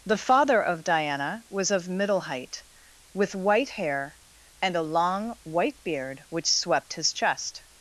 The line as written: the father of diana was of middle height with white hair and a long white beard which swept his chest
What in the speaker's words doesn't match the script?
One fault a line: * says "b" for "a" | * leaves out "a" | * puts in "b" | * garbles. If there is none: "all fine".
all fine